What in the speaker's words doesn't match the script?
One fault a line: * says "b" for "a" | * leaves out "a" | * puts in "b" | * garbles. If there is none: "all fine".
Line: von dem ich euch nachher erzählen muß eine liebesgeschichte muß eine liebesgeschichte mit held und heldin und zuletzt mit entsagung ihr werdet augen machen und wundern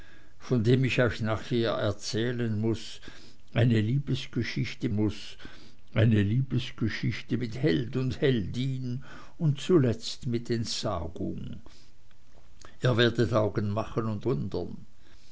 all fine